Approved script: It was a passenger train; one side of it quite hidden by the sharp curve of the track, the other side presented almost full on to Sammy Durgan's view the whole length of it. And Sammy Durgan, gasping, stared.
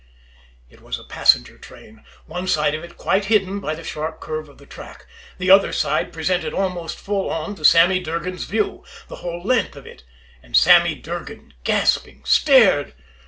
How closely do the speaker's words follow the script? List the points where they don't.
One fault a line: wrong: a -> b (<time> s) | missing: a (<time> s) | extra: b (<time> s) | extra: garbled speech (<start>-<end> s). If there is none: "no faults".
no faults